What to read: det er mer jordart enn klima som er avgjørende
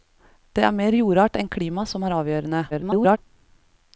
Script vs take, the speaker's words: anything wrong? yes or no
yes